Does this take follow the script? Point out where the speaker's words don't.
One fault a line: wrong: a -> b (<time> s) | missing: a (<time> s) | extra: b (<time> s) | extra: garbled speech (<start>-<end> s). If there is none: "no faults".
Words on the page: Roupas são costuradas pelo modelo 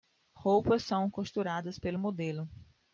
no faults